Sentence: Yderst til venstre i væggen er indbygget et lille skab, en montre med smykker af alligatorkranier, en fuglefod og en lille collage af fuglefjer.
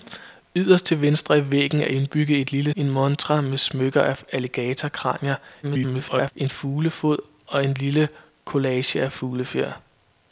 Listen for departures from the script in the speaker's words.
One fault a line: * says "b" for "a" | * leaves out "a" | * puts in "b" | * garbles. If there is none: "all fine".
* leaves out "skab"
* garbles